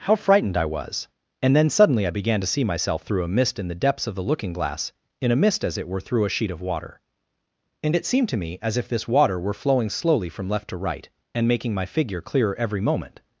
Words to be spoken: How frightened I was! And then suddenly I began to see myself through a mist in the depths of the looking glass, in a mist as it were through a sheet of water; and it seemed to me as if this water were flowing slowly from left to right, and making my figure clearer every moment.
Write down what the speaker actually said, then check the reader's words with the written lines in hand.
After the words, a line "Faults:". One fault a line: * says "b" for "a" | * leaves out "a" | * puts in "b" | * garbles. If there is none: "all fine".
How frightened I was! And then suddenly I began to see myself through a mist in the depths of the looking glass, in a mist as it were through a sheet of water; and it seemed to me as if this water were flowing slowly from left to right, and making my figure clearer every moment.
Faults:
all fine